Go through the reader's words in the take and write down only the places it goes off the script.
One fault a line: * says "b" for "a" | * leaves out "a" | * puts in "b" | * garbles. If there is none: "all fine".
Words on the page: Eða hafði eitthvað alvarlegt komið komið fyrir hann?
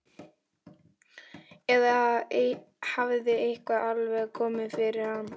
* leaves out "komið"